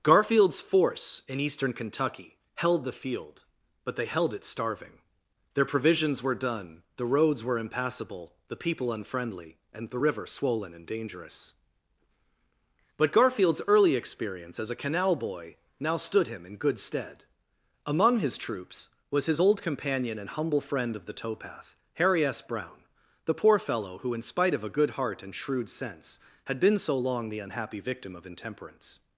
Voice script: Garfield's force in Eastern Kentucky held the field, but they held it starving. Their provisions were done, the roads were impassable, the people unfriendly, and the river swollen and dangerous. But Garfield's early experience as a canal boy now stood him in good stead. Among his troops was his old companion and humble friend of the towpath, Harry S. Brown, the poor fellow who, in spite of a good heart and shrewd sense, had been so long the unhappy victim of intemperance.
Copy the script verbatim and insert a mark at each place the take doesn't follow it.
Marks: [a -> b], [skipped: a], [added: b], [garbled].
Garfield's force in Eastern Kentucky held the field, but they held it starving. Their provisions were done, the roads were impassable, the people unfriendly, and the river swollen and dangerous. But Garfield's early experience as a canal boy now stood him in good stead. Among his troops was his old companion and humble friend of the towpath, Harry S. Brown, the poor fellow who, in spite of a good heart and shrewd sense, had been so long the unhappy victim of intemperance.